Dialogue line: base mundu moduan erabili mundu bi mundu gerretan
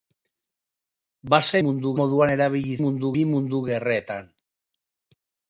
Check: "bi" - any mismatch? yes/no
no